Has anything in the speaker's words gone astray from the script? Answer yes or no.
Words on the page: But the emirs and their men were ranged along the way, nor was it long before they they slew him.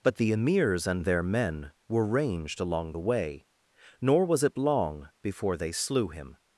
yes